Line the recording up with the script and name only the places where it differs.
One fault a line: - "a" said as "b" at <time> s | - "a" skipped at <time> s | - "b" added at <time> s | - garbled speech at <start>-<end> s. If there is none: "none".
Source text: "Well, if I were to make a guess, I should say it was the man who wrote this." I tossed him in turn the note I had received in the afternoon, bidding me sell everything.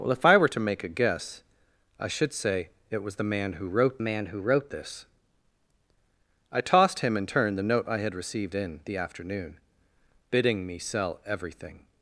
- "man who wrote" added at 4.0 s